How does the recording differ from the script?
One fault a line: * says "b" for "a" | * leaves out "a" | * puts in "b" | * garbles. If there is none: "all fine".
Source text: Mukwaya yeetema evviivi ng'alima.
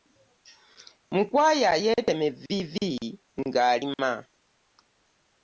all fine